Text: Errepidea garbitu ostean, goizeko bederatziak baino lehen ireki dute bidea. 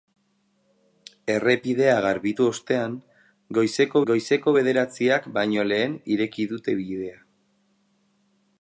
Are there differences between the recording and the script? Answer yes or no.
yes